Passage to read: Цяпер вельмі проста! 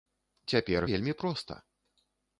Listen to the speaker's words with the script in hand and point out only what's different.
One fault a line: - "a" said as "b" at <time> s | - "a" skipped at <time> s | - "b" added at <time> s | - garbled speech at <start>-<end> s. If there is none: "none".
none